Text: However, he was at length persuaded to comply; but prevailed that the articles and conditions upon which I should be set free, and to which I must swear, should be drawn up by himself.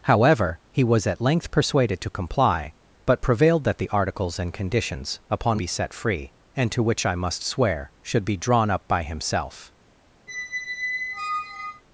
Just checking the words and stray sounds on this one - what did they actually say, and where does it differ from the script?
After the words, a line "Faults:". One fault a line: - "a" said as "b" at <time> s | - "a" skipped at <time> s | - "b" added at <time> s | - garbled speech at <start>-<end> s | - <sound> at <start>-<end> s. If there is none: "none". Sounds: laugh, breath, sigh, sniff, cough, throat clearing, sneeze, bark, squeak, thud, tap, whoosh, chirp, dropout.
However, he was at length persuaded to comply; but prevailed that the articles and conditions upon be set free, and to which I must swear, should be drawn up by himself.
Faults:
- "which I should" skipped at 5.6 s
- squeak at 10.3-11.8 s